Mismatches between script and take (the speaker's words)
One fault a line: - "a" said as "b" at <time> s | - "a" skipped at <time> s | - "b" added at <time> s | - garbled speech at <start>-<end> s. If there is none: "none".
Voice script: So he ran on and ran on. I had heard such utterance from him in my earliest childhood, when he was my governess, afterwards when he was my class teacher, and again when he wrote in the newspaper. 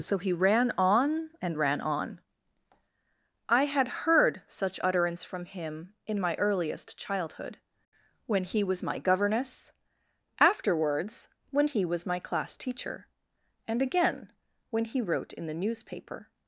none